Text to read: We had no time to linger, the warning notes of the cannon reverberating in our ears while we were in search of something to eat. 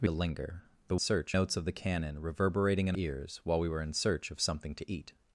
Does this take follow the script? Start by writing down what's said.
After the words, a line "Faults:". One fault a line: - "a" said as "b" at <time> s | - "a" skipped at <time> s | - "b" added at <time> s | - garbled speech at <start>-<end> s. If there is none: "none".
We to linger, the search notes of the cannon reverberating in ears while we were in search of something to eat.
Faults:
- "had no time" skipped at 0.1 s
- "warning" said as "search" at 1.0 s
- "our" skipped at 2.9 s